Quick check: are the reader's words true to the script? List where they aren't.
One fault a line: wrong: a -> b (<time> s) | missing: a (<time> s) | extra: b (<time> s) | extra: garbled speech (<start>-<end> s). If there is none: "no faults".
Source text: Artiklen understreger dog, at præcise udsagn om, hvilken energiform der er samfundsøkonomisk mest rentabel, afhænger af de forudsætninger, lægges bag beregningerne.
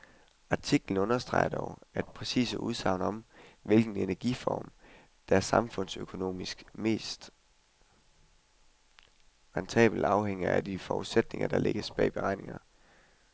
extra: der (11.5 s)